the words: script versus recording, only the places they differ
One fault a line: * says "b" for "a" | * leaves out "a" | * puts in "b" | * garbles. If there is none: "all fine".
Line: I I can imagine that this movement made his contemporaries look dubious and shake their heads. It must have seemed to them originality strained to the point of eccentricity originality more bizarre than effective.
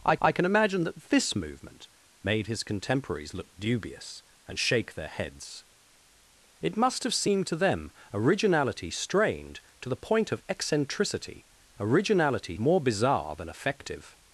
all fine